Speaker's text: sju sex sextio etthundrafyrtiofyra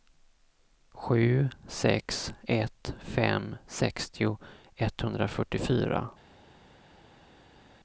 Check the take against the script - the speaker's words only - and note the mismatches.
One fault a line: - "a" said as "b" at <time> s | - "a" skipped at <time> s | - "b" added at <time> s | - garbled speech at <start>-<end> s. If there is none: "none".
- "ett fem" added at 2.5 s